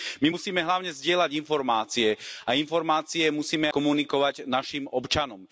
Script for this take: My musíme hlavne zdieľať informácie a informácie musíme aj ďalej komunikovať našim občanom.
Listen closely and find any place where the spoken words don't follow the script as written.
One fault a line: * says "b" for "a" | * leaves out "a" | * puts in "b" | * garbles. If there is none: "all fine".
* leaves out "aj ďalej"